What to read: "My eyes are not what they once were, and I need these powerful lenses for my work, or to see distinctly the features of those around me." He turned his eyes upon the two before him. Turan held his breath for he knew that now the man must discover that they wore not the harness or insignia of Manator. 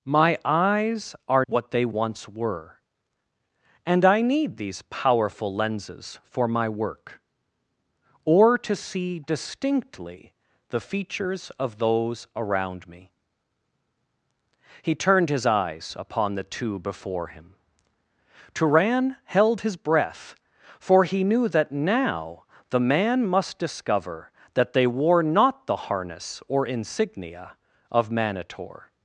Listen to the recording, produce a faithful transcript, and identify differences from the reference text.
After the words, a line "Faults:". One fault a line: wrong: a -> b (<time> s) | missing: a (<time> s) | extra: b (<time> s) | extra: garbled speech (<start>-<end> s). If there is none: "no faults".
"My eyes are what they once were, and I need these powerful lenses for my work, or to see distinctly the features of those around me." He turned his eyes upon the two before him. Turan held his breath for he knew that now the man must discover that they wore not the harness or insignia of Manator.
Faults:
missing: not (1.4 s)